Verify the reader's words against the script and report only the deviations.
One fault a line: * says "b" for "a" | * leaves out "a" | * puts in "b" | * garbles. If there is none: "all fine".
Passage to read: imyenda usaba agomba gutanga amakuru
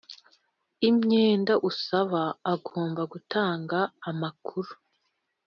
all fine